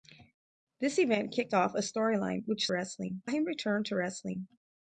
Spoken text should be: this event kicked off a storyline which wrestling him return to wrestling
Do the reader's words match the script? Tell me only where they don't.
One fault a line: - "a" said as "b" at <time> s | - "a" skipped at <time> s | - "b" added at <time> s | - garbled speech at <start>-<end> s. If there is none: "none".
none